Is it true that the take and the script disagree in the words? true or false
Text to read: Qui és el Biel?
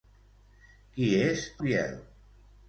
true